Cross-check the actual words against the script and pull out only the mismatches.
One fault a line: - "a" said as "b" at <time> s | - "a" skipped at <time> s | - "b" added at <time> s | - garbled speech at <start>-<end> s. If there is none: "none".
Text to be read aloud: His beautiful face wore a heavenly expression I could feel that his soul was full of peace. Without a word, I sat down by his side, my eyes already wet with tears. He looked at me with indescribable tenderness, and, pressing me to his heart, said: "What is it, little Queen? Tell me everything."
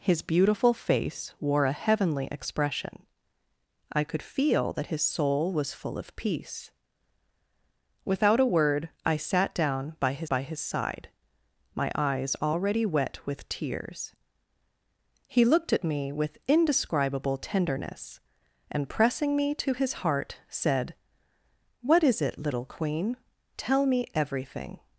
- "by his" added at 10.3 s